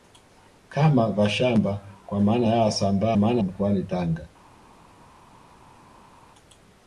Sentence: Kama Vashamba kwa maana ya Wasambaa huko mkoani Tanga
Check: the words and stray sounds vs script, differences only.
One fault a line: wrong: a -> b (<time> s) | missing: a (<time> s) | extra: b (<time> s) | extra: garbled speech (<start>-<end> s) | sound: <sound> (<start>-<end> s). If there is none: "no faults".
wrong: huko -> maana (3.2 s)